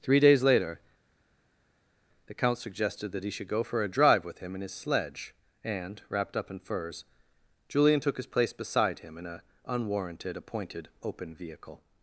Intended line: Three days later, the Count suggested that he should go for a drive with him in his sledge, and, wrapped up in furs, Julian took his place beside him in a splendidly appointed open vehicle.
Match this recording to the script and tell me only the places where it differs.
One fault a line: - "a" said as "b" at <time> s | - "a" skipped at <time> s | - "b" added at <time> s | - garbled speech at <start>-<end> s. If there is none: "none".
- "splendidly" said as "unwarranted" at 9.6 s